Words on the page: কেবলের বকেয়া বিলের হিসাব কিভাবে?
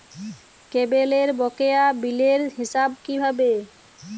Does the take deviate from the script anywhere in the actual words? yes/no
no